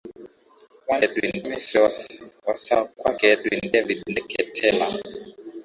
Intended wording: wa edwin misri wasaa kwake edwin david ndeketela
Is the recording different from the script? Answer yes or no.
no